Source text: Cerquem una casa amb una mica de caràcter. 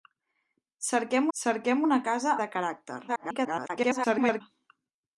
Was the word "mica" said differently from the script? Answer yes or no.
yes